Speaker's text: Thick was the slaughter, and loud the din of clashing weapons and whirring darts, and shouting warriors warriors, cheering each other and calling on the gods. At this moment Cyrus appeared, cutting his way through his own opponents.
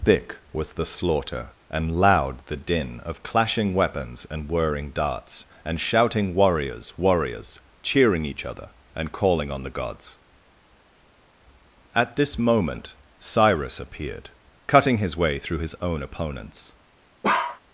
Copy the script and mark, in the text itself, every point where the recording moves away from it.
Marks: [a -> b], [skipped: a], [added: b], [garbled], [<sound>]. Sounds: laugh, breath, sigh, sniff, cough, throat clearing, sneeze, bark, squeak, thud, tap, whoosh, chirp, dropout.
Thick was the slaughter, and loud the din of clashing weapons and whirring darts, and shouting warriors warriors, cheering each other and calling on the gods. At this moment Cyrus appeared, cutting his way through his own opponents. [bark]